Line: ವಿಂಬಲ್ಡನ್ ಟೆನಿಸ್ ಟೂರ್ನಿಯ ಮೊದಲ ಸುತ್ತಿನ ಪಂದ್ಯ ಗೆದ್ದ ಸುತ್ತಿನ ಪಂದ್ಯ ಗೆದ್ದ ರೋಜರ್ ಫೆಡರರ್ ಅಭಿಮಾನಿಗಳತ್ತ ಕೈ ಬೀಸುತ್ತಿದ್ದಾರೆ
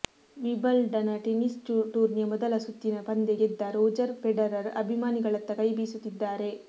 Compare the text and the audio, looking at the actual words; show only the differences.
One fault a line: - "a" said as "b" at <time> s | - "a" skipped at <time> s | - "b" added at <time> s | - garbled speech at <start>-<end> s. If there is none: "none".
- "ಸುತ್ತಿನ ಪಂದ್ಯ ಗೆದ್ದ" skipped at 3.6 s